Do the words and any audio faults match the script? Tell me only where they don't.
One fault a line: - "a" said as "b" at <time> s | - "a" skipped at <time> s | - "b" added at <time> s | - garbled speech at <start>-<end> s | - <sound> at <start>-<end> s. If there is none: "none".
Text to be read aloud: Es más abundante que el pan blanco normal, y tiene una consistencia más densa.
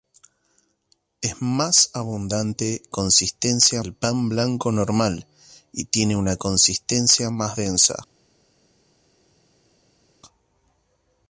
- "que" said as "consistencia" at 2.9 s